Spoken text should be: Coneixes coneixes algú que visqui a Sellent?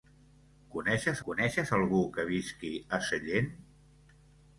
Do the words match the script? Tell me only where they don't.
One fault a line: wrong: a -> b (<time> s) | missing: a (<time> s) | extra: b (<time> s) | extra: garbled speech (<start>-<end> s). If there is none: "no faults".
no faults